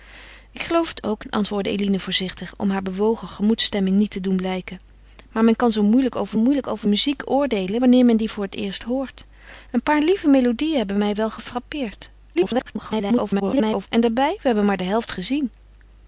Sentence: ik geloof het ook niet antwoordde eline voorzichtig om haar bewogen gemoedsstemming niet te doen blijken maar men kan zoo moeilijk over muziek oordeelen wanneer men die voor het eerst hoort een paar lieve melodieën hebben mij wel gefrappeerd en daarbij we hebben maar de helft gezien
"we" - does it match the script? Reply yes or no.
yes